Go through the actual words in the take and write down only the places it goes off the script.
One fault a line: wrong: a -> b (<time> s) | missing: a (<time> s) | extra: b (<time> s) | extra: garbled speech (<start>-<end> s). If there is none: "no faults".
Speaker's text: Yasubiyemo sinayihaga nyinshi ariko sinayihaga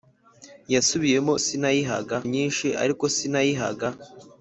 no faults